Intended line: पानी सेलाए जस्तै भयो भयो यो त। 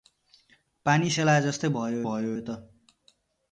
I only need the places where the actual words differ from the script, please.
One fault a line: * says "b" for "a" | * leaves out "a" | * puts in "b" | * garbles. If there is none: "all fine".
all fine